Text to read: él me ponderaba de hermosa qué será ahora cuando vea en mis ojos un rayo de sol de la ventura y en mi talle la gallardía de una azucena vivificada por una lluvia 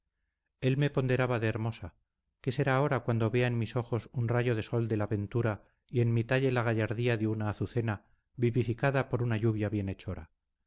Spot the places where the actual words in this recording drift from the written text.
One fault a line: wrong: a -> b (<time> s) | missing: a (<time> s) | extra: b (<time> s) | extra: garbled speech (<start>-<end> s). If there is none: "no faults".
no faults